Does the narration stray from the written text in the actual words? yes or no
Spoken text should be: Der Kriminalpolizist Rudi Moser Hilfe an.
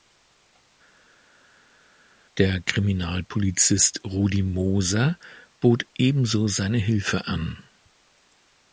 yes